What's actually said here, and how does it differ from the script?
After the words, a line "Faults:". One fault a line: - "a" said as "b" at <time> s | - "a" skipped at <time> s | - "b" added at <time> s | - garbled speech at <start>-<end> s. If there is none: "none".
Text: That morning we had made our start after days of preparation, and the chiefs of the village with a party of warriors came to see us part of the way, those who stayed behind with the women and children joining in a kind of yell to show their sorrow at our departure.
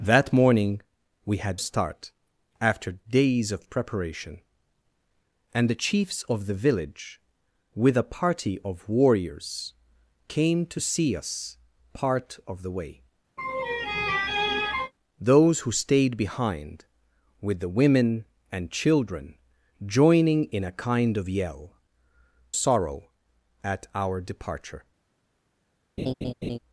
That morning we had start after days of preparation, and the chiefs of the village with a party of warriors came to see us part of the way, those who stayed behind with the women and children joining in a kind of yell sorrow at our departure.
Faults:
- "made our" skipped at 1.6 s
- "to show their" skipped at 21.7 s